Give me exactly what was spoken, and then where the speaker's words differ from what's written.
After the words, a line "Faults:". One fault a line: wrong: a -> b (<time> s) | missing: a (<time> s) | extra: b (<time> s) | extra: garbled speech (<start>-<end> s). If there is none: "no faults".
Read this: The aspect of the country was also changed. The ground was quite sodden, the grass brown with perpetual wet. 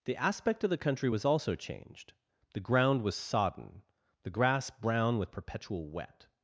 The aspect of the country was also changed. The ground was sodden, the grass brown with perpetual wet.
Faults:
missing: quite (3.2 s)